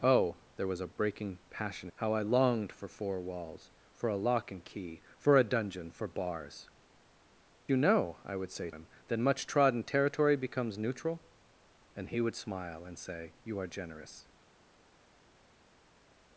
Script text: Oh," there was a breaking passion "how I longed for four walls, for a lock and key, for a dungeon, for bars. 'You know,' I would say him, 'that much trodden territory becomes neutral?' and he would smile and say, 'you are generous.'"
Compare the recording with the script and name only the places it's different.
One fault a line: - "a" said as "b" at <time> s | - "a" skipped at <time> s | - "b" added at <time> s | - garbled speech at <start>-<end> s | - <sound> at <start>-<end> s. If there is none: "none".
none